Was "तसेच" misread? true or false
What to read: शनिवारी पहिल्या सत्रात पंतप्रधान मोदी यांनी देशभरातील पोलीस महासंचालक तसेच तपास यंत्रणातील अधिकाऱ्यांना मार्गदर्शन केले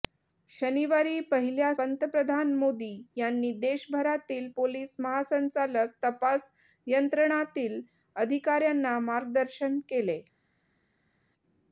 true